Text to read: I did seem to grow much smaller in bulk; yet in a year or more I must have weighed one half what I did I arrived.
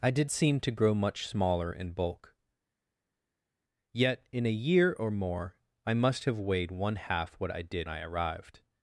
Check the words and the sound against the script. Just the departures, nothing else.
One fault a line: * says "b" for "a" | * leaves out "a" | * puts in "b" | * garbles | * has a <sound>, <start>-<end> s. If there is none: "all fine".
all fine